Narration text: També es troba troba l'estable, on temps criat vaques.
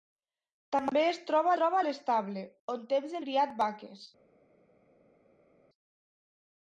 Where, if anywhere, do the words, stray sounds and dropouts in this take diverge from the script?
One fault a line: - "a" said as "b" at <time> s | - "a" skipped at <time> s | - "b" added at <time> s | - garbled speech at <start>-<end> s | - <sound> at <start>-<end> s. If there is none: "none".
none